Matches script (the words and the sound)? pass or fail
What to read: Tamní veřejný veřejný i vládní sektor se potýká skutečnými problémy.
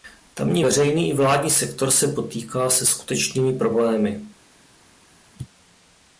fail